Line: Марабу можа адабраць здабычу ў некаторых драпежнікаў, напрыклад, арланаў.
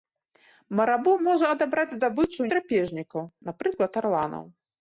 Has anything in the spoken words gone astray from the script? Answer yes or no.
yes